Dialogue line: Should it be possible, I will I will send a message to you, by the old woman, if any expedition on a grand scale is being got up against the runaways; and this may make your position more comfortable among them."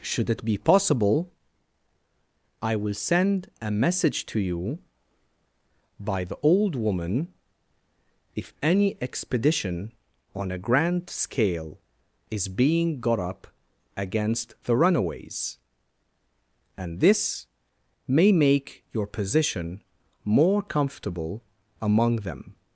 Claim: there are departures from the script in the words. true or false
true